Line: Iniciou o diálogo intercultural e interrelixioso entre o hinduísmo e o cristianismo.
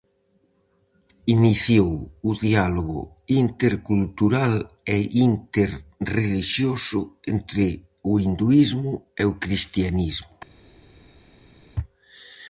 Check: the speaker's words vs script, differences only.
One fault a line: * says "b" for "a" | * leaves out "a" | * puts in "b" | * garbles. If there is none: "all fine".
all fine